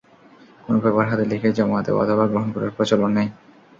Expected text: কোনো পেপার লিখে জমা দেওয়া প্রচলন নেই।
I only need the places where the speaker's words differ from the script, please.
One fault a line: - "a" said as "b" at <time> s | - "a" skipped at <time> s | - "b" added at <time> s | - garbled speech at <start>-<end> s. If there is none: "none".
- "হাতে" added at 1.1 s
- "অথবা গ্রহণ করার" added at 2.0 s